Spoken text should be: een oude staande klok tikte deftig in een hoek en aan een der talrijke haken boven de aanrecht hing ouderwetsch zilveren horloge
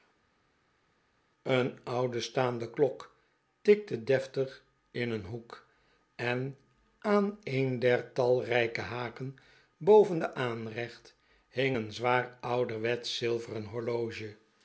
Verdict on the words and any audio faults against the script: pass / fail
fail